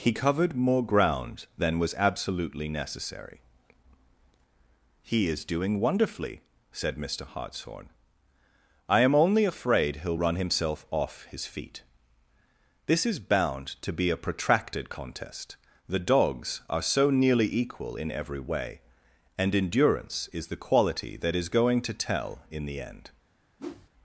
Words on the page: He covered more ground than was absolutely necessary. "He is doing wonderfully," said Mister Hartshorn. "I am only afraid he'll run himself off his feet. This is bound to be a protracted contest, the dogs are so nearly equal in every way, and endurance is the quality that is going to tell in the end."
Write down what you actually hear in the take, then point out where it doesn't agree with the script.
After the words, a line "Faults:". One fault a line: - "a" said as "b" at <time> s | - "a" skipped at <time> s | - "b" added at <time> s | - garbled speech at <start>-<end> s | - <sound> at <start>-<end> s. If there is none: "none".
He covered more ground than was absolutely necessary. "He is doing wonderfully," said Mister Hartshorn. "I am only afraid he'll run himself off his feet. This is bound to be a protracted contest, the dogs are so nearly equal in every way, and endurance is the quality that is going to tell in the end."
Faults:
- whoosh at 23.6-23.9 s